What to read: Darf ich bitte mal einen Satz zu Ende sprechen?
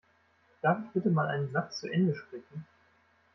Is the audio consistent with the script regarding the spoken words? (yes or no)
yes